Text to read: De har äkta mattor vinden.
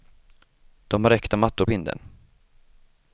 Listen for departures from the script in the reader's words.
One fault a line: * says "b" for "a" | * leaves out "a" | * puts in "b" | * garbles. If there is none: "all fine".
all fine